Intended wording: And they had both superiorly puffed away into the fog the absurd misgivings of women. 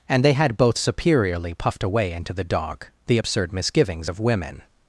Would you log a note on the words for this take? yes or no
yes